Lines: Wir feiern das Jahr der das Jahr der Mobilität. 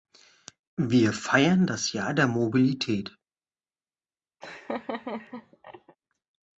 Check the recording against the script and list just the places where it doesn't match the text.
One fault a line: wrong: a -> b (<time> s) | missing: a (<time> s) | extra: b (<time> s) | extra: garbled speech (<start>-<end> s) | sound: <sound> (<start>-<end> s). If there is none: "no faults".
missing: das Jahr der (2.2 s)
sound: laugh (4.4-6.0 s)